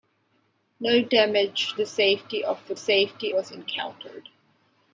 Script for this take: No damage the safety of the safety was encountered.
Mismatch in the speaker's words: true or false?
false